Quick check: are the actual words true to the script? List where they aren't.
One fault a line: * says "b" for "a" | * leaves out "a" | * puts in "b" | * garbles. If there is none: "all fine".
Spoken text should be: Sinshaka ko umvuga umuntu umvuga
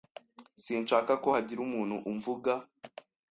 * says "hagira" for "umvuga"